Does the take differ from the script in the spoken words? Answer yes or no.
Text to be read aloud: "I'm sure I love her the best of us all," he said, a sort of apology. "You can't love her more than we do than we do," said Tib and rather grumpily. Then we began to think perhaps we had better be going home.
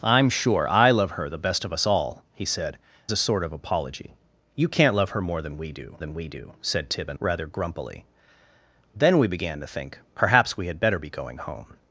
no